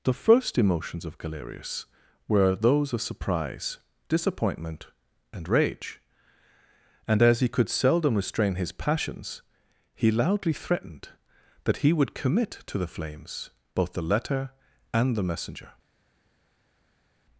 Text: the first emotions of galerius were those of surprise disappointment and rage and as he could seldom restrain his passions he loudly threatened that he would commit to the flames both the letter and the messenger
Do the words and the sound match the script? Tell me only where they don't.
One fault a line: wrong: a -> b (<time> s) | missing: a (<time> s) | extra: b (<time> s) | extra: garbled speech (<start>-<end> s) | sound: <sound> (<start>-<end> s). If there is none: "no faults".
no faults